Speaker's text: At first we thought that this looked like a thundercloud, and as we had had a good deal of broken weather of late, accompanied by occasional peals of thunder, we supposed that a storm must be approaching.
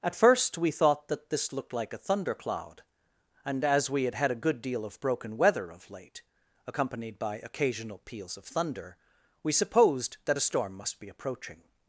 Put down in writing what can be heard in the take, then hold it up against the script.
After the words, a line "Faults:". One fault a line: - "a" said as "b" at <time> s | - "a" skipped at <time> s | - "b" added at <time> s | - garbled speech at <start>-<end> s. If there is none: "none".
At first we thought that this looked like a thundercloud, and as we had had a good deal of broken weather of late, accompanied by occasional peals of thunder, we supposed that a storm must be approaching.
Faults:
none